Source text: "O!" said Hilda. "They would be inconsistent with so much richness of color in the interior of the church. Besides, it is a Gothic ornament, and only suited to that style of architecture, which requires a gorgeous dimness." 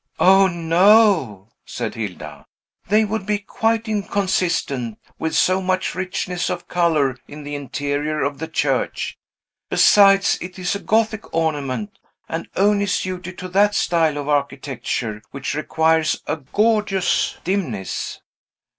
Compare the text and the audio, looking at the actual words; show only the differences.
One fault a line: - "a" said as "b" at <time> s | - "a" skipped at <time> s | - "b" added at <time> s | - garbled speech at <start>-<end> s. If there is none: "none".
- "no" added at 0.5 s
- "quite" added at 3.4 s